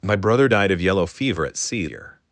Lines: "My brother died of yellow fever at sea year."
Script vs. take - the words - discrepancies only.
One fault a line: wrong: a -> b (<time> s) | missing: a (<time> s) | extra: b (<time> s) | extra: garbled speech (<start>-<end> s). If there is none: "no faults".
no faults